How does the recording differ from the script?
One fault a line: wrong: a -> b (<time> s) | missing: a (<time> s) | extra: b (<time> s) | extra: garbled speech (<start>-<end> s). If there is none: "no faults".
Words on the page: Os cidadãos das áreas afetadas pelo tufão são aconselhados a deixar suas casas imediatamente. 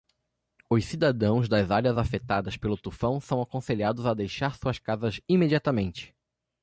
no faults